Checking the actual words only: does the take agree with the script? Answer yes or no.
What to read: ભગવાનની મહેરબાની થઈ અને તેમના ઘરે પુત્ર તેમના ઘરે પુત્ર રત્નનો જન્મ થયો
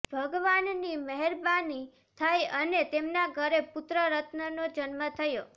no